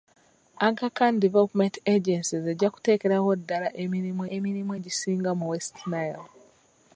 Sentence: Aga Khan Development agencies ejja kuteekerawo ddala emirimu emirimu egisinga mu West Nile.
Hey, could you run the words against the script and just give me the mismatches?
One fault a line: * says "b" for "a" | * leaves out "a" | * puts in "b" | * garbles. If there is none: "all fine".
all fine